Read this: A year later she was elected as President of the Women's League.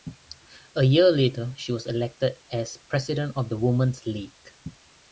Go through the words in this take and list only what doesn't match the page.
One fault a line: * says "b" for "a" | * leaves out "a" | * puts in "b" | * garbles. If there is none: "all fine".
all fine